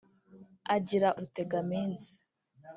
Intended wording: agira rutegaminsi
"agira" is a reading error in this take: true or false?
false